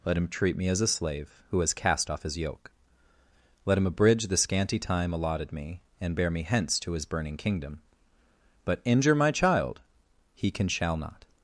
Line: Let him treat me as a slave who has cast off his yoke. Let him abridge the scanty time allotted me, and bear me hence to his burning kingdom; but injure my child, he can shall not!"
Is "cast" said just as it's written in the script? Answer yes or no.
yes